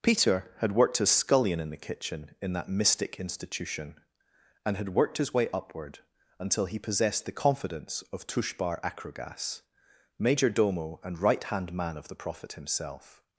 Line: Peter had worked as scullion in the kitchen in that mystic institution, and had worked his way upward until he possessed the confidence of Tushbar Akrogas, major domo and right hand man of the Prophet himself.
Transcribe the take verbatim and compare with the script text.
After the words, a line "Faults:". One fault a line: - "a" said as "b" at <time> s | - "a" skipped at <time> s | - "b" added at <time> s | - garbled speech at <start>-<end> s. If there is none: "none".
Peter had worked as scullion in the kitchen in that mystic institution, and had worked his way upward until he possessed the confidence of Tushbar Akrogas, major domo and right hand man of the Prophet himself.
Faults:
none